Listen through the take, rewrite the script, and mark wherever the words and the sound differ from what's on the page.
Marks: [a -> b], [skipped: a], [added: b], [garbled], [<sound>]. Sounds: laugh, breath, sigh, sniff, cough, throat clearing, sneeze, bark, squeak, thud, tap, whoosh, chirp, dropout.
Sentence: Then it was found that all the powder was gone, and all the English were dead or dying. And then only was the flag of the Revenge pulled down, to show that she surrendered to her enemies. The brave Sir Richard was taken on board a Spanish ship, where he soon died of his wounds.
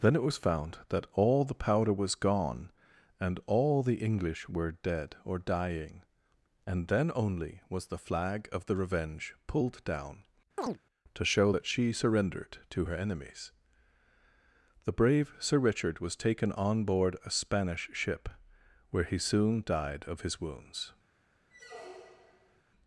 Then it was found that all the powder was gone, and all the English were dead or dying. And then only was the flag of the Revenge pulled down, [chirp] to show that she surrendered to her enemies. The brave Sir Richard was taken on board a Spanish ship, where he soon died of his wounds. [squeak]